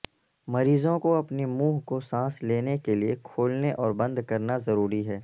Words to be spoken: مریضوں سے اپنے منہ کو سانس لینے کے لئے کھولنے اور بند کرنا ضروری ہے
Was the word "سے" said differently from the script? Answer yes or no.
yes